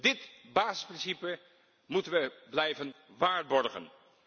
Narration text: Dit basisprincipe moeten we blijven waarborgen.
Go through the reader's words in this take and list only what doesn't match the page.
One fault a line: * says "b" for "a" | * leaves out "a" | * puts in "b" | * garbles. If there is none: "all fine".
all fine